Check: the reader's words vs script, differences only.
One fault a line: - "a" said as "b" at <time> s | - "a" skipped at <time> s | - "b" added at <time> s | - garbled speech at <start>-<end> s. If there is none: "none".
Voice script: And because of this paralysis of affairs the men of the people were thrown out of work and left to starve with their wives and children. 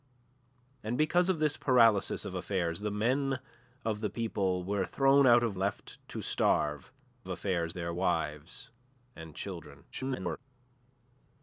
- "work and" skipped at 5.6 s
- "with" said as "affairs" at 7.3 s
- garbled speech at 9.9-10.4 s